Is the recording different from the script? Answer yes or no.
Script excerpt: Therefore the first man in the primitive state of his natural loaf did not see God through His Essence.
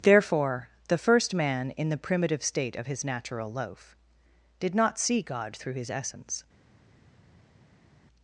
no